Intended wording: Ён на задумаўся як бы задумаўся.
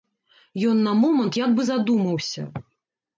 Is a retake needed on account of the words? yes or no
yes